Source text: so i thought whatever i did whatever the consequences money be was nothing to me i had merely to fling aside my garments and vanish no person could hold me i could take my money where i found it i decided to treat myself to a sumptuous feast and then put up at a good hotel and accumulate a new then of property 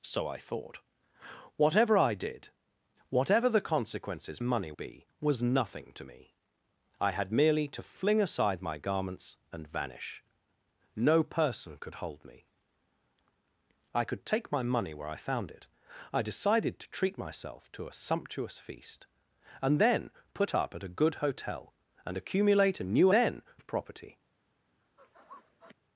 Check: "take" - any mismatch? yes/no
no